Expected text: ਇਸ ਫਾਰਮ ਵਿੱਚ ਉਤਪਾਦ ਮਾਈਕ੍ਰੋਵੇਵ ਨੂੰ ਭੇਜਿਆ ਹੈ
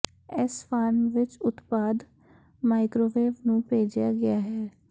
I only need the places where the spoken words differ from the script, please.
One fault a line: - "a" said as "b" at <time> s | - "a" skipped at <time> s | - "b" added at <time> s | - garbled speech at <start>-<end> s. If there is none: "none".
- "ਗਿਆ" added at 4.1 s